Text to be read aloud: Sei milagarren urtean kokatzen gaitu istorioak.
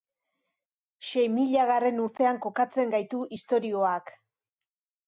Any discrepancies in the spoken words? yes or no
no